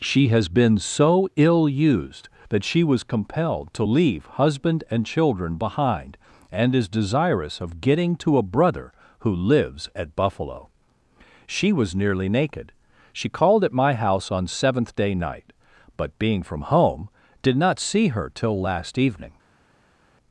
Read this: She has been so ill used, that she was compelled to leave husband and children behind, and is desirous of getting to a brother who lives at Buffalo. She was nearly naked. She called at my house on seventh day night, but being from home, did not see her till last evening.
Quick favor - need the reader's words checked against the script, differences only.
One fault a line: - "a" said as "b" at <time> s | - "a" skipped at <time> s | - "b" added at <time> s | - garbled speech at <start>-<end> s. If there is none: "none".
none